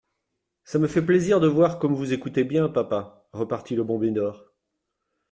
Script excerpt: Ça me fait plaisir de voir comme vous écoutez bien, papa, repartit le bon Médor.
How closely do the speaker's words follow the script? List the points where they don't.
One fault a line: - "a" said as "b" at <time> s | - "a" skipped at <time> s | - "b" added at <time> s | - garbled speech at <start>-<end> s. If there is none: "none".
none